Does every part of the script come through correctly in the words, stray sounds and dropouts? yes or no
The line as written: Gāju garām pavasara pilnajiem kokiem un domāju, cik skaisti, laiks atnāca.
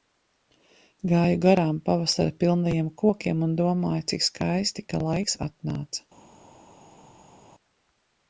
no